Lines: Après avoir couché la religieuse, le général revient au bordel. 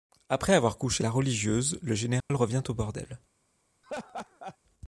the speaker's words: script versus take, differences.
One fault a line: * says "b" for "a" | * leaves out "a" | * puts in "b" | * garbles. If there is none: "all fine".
all fine